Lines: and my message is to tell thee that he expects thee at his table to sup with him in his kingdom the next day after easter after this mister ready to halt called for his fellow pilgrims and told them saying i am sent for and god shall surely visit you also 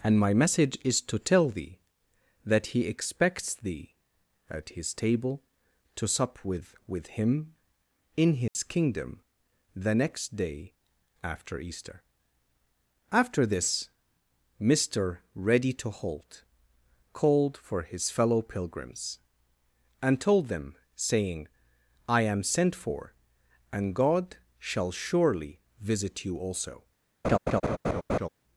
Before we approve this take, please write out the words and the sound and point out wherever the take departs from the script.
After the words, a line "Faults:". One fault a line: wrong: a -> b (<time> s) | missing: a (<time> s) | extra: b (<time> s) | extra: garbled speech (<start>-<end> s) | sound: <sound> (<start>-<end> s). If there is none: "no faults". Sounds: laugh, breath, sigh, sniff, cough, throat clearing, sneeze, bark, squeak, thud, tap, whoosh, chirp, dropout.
and my message is to tell thee that he expects thee at his table to sup with with him in his kingdom the next day after easter after this mister ready to halt called for his fellow pilgrims and told them saying i am sent for and god shall surely visit you also
Faults:
extra: with (6.9 s)
sound: dropout (8.5-8.6 s)
sound: laugh (27.2-28.3 s)